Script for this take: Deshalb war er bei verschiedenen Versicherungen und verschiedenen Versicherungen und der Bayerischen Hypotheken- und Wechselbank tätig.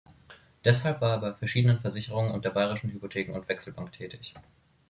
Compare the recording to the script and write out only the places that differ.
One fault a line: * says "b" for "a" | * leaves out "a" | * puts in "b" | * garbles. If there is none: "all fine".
* leaves out "verschiedenen Versicherungen und"